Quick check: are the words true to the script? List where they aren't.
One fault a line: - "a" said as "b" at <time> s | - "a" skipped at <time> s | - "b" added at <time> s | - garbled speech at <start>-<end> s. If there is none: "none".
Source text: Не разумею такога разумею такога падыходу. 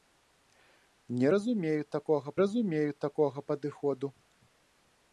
none